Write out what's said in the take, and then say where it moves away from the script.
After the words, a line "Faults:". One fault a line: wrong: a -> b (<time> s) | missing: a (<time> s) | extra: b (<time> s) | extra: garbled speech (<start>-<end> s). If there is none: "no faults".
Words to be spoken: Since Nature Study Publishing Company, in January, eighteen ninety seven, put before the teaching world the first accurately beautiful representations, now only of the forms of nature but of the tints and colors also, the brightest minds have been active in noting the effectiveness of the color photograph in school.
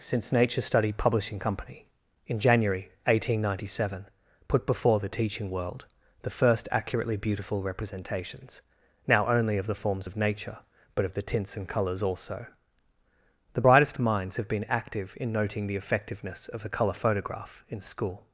Since Nature Study Publishing Company, in January, eighteen ninety seven, put before the teaching world the first accurately beautiful representations, now only of the forms of nature but of the tints and colors also, the brightest minds have been active in noting the effectiveness of the color photograph in school.
Faults:
no faults